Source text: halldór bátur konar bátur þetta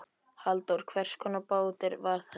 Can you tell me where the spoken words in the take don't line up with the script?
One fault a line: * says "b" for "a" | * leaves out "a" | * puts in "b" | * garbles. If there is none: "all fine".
* says "hvers" for "bátur"
* puts in "var"